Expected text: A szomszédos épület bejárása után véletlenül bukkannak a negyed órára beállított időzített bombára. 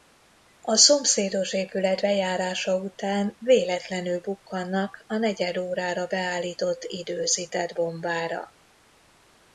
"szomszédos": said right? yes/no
yes